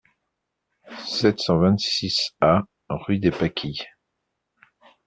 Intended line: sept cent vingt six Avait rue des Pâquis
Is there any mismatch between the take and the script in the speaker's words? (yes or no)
yes